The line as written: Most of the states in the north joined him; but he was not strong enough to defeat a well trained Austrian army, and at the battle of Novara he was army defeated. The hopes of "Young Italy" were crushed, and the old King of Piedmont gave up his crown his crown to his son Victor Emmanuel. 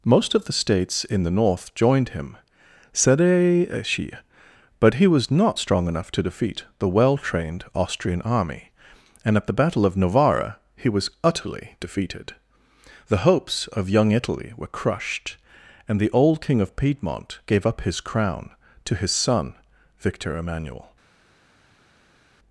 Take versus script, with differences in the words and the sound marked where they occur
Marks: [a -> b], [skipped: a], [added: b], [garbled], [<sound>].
Most of the states in the north joined him; but he was not strong enough to defeat [a -> the] well trained Austrian army, and at the battle of Novara he was [army -> utterly] defeated. The hopes of "Young Italy" were crushed, and the old King of Piedmont gave up his crown [skipped: his crown] to his son Victor Emmanuel.